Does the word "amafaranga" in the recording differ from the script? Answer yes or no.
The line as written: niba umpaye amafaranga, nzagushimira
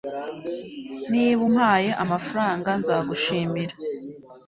no